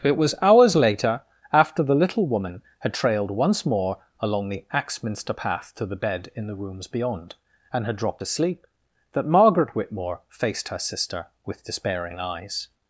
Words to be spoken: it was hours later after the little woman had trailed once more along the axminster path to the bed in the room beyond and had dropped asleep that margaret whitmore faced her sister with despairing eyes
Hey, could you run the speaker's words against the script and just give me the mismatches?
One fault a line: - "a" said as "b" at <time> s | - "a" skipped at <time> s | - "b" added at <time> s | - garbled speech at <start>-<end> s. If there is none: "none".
- "room" said as "rooms" at 6.5 s